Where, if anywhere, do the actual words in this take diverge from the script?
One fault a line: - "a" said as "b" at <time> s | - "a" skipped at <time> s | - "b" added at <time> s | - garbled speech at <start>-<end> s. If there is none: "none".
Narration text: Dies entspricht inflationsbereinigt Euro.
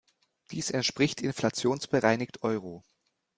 none